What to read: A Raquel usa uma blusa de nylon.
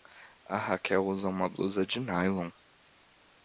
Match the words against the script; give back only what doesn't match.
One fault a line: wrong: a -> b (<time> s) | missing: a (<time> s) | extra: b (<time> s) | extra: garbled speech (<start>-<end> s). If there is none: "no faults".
no faults